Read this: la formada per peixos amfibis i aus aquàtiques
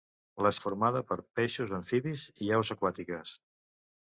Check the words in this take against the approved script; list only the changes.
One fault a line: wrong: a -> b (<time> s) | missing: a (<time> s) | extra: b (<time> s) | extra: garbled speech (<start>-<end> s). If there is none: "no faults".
no faults